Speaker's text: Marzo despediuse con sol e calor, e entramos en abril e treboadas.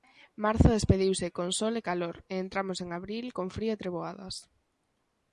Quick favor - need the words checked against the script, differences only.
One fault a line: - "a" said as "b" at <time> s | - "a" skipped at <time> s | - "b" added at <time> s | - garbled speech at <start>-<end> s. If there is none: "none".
- "con frío" added at 3.4 s